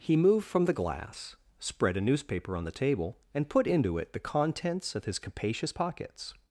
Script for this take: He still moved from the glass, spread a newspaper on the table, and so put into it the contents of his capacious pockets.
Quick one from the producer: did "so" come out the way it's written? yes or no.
no